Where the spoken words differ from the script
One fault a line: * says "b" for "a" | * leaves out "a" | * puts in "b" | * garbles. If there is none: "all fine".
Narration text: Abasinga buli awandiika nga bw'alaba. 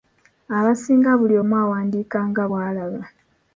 * puts in "omu"